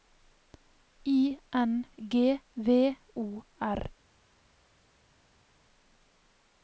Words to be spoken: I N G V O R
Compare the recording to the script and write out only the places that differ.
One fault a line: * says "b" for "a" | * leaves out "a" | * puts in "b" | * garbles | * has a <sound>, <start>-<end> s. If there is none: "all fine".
all fine